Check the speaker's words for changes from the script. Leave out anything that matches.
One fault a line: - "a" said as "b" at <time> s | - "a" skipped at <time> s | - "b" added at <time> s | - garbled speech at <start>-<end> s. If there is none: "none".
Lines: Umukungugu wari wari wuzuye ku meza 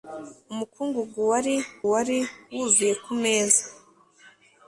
none